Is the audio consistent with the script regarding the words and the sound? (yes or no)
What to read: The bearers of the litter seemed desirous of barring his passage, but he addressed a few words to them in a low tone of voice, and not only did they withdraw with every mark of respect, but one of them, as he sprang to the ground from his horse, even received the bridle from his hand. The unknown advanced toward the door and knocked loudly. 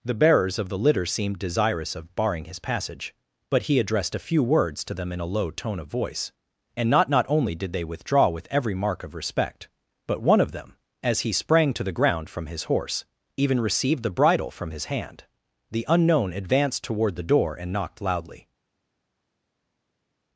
no